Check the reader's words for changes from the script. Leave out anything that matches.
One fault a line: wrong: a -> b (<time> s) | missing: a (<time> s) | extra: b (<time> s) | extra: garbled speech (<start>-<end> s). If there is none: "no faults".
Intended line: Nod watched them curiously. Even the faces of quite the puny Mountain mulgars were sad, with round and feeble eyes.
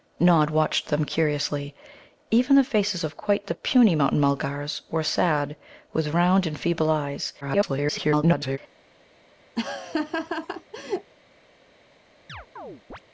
extra: garbled speech (7.4-8.6 s)